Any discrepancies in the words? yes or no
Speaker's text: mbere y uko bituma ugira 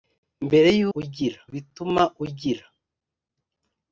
yes